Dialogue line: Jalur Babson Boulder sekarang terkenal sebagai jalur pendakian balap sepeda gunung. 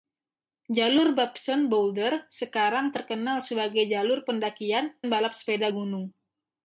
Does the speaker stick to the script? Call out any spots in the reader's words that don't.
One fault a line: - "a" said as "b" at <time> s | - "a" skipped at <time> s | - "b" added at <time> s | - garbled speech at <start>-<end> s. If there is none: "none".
none